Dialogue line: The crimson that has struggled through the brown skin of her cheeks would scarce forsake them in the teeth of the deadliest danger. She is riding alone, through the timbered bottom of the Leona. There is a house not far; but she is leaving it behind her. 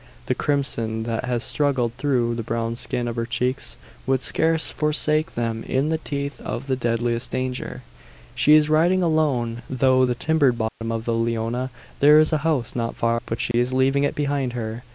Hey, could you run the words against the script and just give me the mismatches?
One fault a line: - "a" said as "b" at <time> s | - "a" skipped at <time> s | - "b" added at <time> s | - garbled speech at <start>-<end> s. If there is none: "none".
none